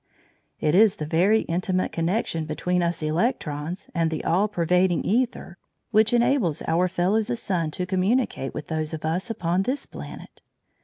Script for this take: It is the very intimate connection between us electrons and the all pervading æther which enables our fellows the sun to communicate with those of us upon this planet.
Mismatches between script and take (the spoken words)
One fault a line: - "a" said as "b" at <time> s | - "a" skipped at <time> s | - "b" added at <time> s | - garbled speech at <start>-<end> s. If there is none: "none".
none